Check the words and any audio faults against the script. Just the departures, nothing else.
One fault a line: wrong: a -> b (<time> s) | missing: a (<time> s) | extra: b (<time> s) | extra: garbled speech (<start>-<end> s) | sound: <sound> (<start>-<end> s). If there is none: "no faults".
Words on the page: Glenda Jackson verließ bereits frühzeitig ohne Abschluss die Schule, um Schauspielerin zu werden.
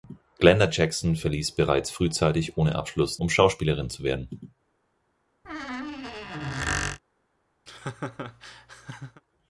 missing: die Schule (3.2 s)
sound: squeak (5.4-7.0 s)
sound: laugh (7.7-9.2 s)